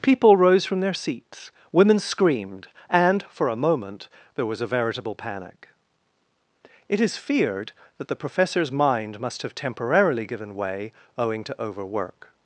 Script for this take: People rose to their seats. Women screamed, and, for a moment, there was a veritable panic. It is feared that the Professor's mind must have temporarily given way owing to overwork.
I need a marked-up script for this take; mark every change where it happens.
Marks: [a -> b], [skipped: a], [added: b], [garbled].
People rose [to -> from] their seats. Women screamed, and, for a moment, there was a veritable panic. It is feared that the Professor's mind must have temporarily given way owing to overwork.